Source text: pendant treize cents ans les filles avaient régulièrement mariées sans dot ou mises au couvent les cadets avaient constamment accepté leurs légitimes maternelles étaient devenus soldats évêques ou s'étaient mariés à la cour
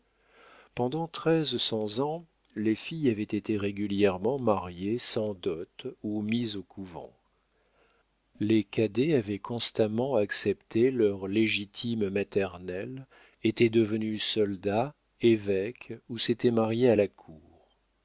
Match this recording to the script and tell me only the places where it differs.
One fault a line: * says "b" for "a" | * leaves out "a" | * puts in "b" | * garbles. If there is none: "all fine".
* puts in "été"